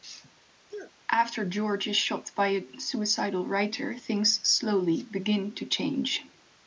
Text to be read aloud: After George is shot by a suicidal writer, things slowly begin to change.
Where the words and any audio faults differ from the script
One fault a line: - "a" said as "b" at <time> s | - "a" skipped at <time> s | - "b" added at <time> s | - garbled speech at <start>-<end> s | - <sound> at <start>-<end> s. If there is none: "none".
- sneeze at 0.7-0.9 s